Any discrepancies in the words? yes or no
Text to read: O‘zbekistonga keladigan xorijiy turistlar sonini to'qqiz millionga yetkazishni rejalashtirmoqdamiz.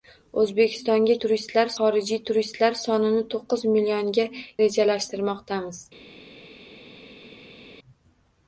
yes